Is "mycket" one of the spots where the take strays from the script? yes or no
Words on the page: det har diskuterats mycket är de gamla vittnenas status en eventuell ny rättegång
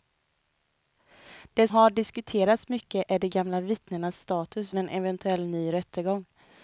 no